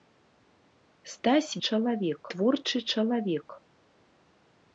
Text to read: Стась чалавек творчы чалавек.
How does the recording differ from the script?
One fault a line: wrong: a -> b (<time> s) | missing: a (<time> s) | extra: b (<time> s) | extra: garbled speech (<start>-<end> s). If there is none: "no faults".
no faults